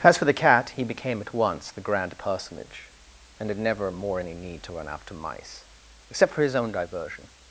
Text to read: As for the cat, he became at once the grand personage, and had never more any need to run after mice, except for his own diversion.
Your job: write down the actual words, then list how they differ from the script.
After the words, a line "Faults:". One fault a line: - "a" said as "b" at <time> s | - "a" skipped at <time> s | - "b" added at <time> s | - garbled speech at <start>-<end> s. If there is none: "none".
As for the cat, he became at once the grand personage, and had never more any need to run after mice, except for his own diversion.
Faults:
none